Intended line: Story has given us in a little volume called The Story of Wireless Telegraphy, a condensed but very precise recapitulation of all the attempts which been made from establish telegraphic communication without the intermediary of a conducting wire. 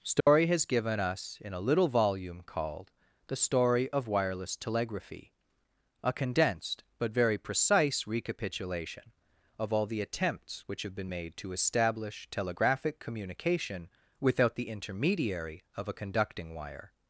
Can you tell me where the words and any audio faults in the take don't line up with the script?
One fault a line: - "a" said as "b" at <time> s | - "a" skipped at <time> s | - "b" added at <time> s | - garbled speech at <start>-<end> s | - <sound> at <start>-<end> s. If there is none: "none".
- dropout at 0.2-0.3 s
- "have" added at 10.8 s
- "from" said as "to" at 11.4 s